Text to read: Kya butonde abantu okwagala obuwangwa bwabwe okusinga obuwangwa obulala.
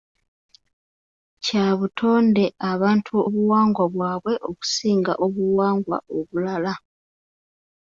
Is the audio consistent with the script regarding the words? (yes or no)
no